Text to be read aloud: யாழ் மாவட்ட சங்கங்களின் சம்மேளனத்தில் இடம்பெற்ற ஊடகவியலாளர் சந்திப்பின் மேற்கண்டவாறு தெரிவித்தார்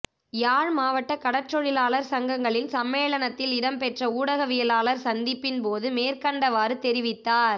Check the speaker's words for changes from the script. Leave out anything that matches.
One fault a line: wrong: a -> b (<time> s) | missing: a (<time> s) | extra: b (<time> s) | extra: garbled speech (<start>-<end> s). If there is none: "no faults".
extra: கடற்றொழிலாளர் (1.1 s)
extra: போது (5.6 s)